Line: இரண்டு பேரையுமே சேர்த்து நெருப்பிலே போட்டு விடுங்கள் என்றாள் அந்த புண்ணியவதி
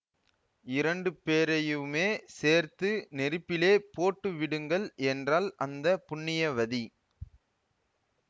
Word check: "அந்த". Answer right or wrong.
right